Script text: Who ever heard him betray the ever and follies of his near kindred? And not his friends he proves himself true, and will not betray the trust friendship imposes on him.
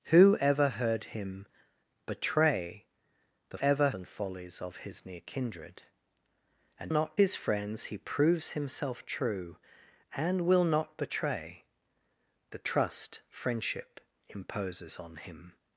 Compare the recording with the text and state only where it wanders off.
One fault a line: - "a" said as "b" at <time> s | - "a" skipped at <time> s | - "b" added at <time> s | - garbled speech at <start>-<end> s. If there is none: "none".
none